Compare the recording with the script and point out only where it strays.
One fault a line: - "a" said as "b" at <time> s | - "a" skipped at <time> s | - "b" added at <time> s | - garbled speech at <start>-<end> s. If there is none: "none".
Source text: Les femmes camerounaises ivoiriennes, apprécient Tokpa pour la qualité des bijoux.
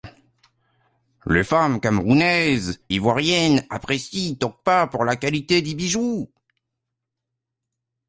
none